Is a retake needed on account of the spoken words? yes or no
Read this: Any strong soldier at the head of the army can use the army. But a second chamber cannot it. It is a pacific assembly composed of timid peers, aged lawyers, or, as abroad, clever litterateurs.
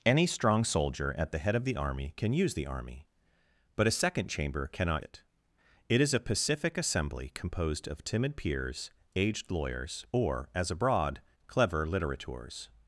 no